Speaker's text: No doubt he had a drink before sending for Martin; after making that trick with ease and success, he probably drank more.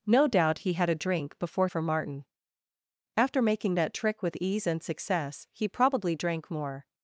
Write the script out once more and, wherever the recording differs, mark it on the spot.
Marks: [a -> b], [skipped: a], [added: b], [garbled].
No doubt he had a drink before [skipped: sending] for Martin; after making that trick with ease and success, he probably drank more.